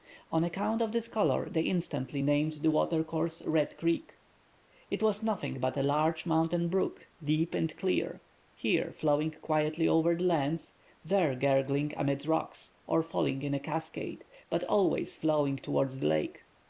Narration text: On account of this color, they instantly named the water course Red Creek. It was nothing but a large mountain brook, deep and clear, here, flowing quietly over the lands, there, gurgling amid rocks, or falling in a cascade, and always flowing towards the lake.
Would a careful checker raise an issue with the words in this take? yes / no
yes